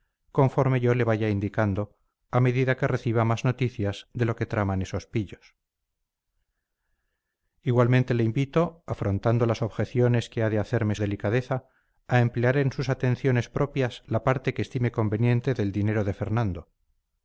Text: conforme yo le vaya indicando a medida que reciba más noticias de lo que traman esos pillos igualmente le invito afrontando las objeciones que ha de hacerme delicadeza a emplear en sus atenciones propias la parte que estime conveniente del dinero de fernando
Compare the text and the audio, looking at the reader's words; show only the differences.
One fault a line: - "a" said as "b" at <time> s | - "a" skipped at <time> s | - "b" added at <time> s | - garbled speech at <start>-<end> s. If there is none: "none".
none